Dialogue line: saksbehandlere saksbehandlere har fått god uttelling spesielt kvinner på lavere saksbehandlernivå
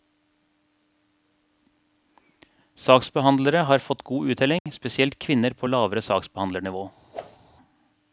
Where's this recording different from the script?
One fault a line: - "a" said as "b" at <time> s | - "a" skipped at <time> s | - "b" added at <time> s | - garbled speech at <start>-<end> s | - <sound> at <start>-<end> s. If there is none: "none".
- "saksbehandlere" skipped at 3.6 s
- dropout at 4.6-4.7 s
- whoosh at 7.1-7.4 s